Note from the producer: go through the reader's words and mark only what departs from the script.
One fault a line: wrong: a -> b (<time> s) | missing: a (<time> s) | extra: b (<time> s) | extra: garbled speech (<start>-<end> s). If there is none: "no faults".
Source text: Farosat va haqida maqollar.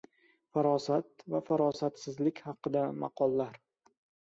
extra: farosatsizlik (1.5 s)